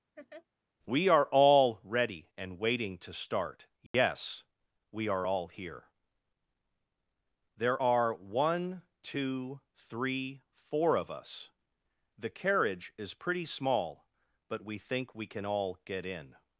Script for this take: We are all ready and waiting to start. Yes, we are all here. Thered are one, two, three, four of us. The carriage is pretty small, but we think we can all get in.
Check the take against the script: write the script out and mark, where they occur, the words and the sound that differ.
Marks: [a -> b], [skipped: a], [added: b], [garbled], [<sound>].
[laugh] We are all ready and waiting to start. Yes, [dropout] we are all here. [Thered -> There] are one, two, three, four of us. The carriage is pretty small, but we think we can all get in.